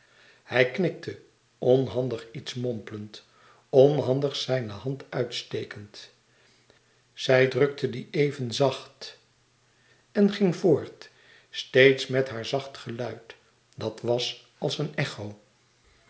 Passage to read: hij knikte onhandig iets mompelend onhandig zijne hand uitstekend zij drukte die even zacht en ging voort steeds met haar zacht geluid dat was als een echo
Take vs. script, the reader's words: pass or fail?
pass